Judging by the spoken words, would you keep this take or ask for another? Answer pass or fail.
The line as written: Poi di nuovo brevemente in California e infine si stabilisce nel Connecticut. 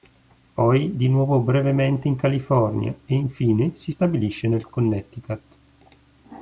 pass